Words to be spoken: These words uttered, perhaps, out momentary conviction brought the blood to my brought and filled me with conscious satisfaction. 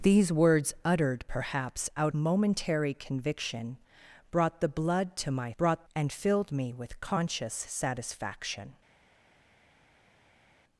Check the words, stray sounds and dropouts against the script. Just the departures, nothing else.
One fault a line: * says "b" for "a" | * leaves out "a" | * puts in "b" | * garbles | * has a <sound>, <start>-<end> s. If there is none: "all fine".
all fine